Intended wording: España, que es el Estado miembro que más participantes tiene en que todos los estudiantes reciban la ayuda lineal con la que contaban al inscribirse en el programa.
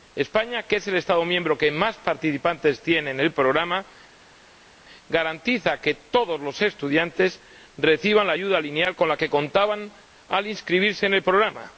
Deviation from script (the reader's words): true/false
true